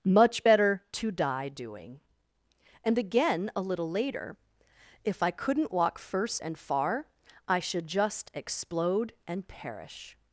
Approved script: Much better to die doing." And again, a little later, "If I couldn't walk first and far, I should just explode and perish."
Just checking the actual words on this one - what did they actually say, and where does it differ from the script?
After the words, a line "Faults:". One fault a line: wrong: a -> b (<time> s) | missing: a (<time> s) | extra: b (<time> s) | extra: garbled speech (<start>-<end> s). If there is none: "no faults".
Much better to die doing." And again, a little later, "If I couldn't walk first and far, I should just explode and perish."
Faults:
no faults